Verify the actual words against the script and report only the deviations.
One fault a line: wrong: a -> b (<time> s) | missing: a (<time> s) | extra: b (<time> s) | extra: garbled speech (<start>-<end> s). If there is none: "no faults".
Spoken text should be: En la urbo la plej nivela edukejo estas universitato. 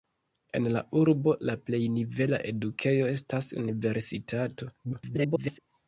extra: garbled speech (4.8-5.6 s)